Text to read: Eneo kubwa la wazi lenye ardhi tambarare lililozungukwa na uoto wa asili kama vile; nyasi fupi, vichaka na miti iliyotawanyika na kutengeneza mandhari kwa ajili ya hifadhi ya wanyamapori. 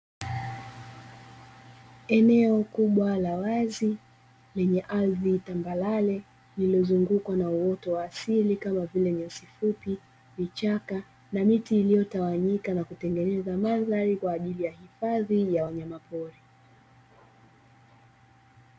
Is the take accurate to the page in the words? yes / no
yes